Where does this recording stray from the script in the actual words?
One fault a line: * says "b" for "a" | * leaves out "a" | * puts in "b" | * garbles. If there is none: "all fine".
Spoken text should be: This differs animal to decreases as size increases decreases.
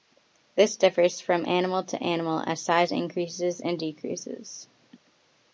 * puts in "from"
* says "animal" for "decreases"
* puts in "and"